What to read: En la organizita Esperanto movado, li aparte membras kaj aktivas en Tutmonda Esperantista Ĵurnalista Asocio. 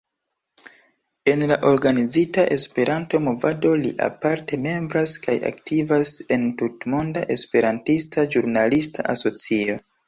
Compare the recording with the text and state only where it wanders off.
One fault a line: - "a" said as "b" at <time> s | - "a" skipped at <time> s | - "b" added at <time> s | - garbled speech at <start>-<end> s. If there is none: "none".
none